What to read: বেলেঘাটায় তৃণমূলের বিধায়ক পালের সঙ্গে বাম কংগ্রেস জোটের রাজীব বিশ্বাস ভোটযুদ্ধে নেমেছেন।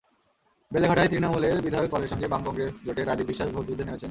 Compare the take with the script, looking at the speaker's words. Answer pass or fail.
pass